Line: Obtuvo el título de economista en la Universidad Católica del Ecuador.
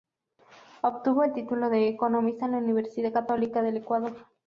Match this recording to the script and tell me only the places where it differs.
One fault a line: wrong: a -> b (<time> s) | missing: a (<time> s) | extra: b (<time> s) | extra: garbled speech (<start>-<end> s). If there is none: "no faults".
no faults